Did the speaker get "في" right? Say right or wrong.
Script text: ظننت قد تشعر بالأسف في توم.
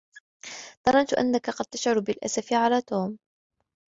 wrong